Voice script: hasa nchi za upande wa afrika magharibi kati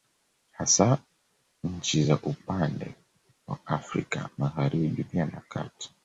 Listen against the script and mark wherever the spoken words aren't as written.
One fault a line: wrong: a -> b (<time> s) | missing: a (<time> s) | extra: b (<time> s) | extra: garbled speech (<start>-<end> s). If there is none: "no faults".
extra: pia na (5.0 s)